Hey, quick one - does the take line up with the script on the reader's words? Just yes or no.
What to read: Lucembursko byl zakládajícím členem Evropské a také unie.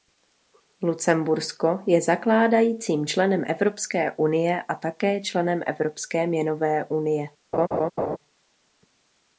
no